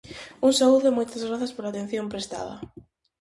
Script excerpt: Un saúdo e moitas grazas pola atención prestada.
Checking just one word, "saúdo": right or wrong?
right